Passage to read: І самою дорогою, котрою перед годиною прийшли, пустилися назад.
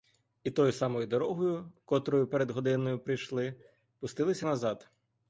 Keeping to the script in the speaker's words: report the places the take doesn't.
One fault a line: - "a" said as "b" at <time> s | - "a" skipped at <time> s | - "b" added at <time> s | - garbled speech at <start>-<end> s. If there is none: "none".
- "тою" added at 0.5 s